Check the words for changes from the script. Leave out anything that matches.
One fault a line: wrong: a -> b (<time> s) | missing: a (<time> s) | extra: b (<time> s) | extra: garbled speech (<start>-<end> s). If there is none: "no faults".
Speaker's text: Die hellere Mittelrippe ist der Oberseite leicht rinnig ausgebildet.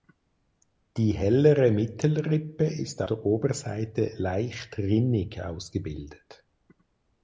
no faults